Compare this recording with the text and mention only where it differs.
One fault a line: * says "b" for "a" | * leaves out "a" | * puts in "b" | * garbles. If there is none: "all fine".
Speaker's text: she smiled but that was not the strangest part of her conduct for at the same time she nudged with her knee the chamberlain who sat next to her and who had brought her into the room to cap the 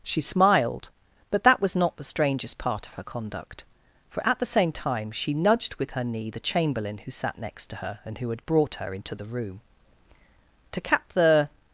all fine